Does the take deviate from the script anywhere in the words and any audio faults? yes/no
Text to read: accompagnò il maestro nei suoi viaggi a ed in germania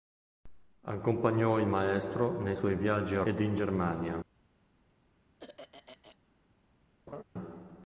yes